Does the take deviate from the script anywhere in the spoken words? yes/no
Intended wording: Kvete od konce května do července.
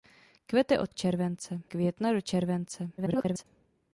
yes